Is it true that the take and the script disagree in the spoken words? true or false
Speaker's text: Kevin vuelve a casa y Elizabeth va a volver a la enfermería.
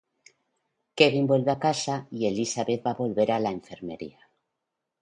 false